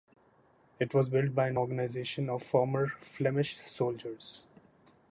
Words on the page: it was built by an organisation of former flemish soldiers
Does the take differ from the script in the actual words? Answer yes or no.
no